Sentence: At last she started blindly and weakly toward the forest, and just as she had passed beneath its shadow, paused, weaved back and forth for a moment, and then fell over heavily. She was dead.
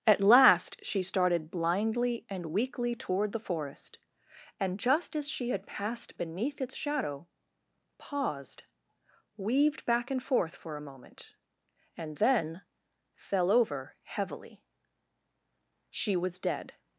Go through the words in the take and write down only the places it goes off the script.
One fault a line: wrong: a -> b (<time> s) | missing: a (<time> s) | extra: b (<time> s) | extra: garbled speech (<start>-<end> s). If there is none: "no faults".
no faults